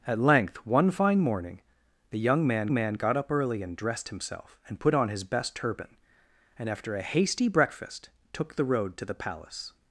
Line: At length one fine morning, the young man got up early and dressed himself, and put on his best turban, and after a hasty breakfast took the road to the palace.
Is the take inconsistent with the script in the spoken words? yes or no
yes